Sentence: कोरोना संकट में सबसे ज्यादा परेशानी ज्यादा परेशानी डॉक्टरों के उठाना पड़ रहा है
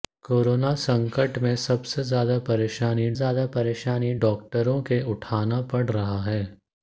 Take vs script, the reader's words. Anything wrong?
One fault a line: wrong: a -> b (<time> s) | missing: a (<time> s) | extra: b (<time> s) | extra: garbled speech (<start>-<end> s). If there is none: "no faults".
no faults